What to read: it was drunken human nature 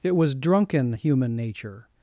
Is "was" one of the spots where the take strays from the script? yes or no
no